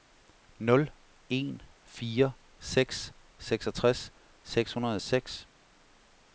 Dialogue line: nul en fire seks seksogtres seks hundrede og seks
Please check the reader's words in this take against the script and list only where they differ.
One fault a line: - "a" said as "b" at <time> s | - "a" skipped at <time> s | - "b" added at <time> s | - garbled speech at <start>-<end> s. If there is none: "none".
none